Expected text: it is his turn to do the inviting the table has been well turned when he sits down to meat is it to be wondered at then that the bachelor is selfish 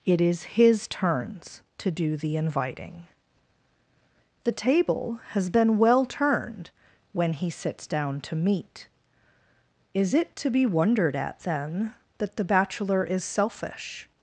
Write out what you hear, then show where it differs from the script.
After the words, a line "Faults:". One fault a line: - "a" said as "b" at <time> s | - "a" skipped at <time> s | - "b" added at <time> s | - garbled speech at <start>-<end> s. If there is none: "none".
it is his turns to do the inviting the table has been well turned when he sits down to meat is it to be wondered at then that the bachelor is selfish
Faults:
- "turn" said as "turns" at 0.9 s